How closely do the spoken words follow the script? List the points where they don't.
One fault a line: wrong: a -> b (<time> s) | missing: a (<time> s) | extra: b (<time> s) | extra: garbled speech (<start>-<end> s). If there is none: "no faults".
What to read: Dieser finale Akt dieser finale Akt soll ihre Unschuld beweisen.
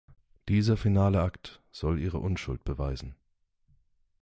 missing: dieser finale Akt (1.6 s)